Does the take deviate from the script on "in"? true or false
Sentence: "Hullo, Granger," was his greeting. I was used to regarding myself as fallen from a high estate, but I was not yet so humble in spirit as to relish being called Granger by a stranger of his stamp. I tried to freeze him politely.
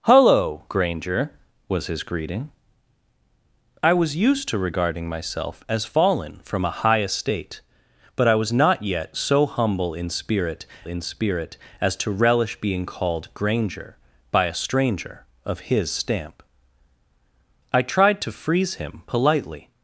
false